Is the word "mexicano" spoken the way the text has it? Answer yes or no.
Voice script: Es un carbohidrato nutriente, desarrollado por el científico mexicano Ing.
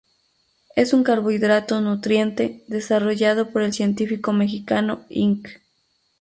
yes